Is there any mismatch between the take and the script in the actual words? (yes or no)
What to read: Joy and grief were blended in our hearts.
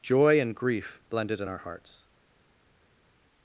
yes